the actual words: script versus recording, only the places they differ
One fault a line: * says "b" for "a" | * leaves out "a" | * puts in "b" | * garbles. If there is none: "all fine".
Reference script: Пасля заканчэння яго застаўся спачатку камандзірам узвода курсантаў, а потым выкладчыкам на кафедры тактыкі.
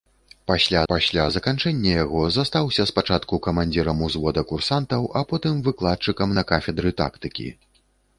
* puts in "пасля"